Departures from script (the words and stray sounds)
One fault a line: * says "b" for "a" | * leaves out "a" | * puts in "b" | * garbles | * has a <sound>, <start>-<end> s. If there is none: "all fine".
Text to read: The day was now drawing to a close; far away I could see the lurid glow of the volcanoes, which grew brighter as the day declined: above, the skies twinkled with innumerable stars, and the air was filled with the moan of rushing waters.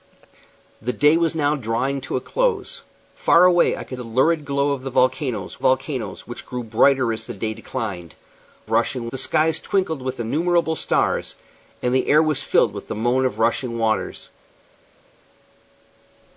* leaves out "see"
* puts in "volcanoes"
* says "rushing" for "above"